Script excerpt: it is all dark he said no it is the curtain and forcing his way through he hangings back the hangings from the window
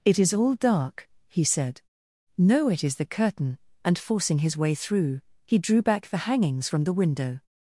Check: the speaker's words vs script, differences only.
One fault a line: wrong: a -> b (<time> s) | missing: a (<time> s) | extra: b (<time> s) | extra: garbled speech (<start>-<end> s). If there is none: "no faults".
wrong: hangings -> drew (5.6 s)